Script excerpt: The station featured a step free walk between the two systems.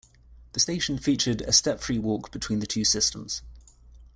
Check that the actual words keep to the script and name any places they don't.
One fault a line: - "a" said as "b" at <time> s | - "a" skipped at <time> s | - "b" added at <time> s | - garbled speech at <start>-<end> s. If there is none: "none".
none